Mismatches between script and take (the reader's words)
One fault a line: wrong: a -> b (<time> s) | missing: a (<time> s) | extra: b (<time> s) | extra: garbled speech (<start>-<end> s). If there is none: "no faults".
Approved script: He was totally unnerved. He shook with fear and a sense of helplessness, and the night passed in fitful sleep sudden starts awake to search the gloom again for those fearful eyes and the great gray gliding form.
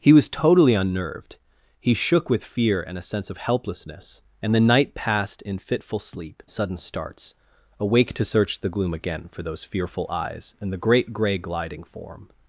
no faults